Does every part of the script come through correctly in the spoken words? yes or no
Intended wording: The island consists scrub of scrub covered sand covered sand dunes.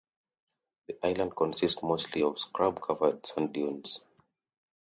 no